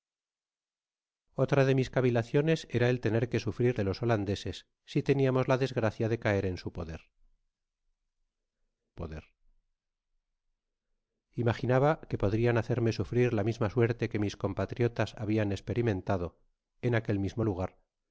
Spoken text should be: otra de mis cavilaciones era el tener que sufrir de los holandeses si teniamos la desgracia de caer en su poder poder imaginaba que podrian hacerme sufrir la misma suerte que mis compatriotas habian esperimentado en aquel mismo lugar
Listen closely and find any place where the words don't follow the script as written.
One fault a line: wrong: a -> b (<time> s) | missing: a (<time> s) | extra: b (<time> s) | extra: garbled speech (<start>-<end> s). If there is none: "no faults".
no faults